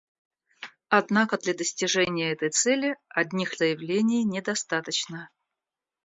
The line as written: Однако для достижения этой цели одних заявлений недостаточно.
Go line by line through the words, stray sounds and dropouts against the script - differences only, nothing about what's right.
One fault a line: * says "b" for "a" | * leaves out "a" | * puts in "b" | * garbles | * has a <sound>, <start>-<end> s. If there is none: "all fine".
all fine